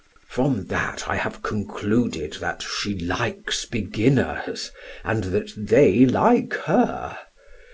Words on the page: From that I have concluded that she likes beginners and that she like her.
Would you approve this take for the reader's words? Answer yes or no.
no